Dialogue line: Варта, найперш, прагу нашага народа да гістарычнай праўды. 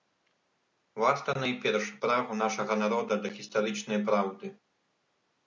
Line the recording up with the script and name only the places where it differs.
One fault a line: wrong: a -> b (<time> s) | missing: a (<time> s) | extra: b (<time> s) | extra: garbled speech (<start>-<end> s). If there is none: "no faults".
no faults